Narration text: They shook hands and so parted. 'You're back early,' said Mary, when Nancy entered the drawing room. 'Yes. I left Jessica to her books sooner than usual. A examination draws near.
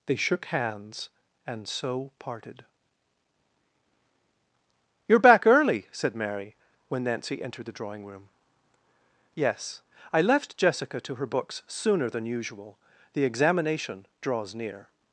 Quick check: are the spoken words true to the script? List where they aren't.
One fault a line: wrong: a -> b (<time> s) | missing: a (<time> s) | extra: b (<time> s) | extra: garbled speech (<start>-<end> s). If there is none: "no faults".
wrong: A -> The (13.1 s)